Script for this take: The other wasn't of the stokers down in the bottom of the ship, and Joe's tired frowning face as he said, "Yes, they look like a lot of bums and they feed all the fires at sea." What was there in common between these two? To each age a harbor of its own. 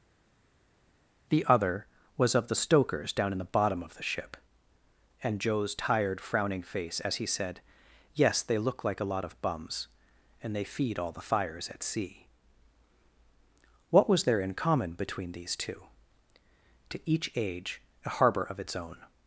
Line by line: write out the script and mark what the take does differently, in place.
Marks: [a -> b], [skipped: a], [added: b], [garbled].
The other [wasn't -> was] of the stokers down in the bottom of the ship, and Joe's tired frowning face as he said, "Yes, they look like a lot of bums and they feed all the fires at sea." What was there in common between these two? To each age a harbor of its own.